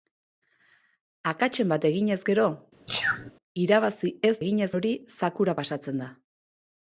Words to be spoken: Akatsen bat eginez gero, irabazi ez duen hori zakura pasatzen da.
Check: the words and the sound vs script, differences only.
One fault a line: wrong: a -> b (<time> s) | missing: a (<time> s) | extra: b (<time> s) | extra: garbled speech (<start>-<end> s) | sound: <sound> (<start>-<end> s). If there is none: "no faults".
sound: sneeze (2.9-3.3 s)
wrong: duen -> eginez (4.4 s)